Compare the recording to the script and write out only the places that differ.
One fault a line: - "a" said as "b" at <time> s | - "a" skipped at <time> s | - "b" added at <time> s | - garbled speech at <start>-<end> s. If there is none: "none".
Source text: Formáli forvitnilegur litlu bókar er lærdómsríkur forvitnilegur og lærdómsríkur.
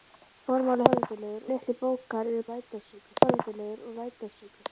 none